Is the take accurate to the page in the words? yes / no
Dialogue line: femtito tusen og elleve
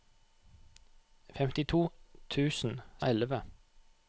yes